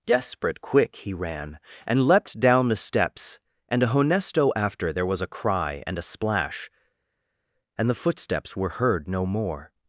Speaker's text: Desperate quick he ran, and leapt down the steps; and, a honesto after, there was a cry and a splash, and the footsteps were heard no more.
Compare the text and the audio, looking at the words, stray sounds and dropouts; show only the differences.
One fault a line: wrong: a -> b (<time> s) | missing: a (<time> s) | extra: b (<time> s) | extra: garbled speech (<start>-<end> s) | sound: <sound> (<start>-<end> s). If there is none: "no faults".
no faults